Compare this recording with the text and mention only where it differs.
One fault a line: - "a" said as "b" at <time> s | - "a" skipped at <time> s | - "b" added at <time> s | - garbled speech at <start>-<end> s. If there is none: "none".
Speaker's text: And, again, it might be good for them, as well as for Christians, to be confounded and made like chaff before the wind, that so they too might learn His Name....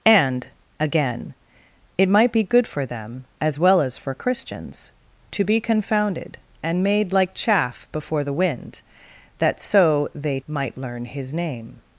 - "too" skipped at 10.4 s